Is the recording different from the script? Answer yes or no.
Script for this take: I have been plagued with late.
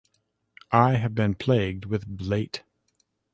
no